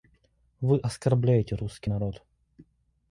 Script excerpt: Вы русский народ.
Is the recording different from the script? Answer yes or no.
yes